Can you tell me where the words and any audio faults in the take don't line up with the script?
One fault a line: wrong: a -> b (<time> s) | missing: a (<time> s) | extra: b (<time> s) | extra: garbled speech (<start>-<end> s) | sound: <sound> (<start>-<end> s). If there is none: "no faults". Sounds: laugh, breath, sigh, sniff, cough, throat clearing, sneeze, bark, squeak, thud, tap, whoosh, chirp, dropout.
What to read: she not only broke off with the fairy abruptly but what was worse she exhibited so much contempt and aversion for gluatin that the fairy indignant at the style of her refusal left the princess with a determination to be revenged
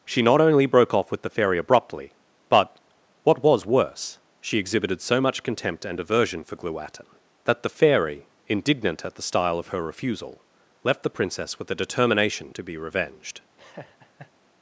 sound: laugh (13.6-14.3 s)